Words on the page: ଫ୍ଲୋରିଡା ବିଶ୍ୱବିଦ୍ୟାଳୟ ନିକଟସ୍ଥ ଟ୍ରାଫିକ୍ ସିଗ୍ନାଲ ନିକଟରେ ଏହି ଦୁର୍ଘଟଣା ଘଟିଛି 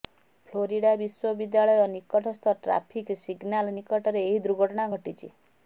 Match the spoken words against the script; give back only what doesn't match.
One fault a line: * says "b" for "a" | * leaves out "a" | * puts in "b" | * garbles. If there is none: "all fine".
all fine